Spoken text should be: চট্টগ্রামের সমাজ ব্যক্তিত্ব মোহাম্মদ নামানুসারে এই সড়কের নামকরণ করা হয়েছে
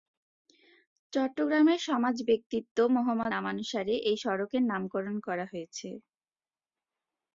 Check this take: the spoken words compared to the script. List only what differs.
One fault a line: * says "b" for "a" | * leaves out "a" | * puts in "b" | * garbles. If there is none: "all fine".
all fine